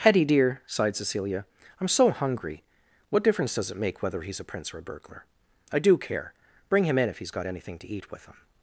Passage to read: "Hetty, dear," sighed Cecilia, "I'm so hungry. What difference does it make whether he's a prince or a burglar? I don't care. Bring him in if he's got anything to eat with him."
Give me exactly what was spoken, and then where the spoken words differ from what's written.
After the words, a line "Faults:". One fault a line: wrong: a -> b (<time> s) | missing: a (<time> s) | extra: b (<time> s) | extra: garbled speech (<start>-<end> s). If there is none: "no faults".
"Hetty, dear," sighed Cecilia, "I'm so hungry. What difference does it make whether he's a prince or a burglar? I do care. Bring him in if he's got anything to eat with him."
Faults:
wrong: don't -> do (5.8 s)